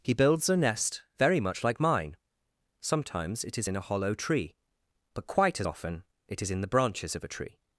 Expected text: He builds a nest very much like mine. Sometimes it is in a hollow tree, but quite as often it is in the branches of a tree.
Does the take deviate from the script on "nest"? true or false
false